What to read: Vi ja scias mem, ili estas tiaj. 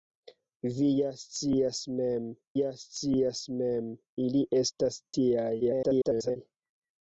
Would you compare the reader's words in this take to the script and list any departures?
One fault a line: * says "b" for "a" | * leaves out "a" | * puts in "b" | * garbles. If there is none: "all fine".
* puts in "ja scias mem"
* garbles